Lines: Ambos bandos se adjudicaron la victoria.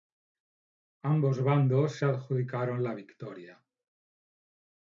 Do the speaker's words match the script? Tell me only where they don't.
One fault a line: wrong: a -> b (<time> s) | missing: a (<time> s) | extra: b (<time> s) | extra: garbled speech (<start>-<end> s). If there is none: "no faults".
no faults